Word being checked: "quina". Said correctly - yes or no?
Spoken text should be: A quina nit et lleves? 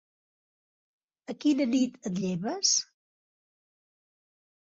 yes